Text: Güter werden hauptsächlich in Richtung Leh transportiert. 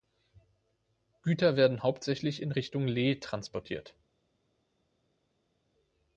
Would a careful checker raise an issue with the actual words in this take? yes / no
no